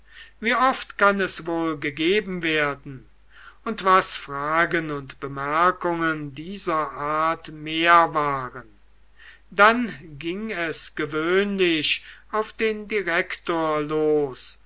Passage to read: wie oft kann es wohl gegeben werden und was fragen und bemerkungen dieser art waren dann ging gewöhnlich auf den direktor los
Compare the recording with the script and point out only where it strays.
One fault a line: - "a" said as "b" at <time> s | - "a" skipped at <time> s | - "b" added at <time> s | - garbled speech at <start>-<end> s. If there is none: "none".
- "mehr" added at 7.5 s
- "es" added at 10.5 s